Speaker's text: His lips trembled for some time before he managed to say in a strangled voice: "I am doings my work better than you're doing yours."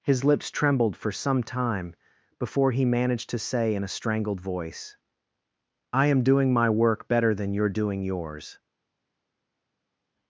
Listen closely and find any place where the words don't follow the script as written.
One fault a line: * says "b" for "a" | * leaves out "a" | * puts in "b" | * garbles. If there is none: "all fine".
* says "doing" for "doings"